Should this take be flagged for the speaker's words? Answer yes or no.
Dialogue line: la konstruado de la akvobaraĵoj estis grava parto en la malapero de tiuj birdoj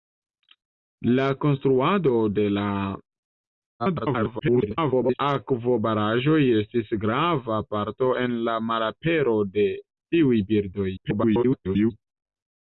yes